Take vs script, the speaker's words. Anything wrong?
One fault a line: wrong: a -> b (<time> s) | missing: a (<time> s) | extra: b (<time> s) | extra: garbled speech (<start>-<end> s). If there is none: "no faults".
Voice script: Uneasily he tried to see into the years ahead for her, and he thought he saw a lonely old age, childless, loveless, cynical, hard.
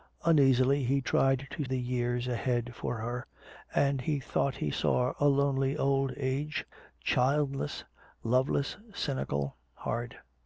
missing: see into (1.6 s)